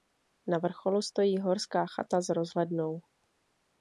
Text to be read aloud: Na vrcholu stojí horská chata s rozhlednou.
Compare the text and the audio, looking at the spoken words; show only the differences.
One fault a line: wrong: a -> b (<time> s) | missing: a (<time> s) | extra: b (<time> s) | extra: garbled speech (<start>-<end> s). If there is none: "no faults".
no faults